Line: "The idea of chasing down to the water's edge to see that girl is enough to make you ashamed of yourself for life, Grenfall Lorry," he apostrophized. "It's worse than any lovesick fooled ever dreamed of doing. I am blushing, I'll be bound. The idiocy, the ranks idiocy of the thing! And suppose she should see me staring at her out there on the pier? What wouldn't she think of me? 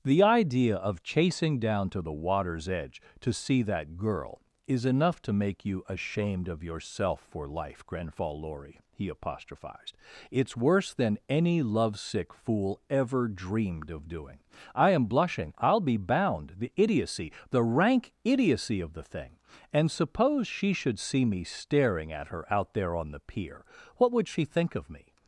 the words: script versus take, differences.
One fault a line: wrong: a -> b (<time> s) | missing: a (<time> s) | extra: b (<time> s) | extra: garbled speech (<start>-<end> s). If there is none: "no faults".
wrong: fooled -> fool (12.3 s)
wrong: ranks -> rank (17.6 s)
wrong: wouldn't -> would (24.1 s)